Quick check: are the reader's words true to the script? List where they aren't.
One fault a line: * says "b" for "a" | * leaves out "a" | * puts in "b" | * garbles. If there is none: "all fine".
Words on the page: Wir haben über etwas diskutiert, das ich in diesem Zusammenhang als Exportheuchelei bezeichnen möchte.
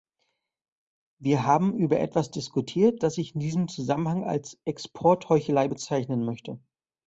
all fine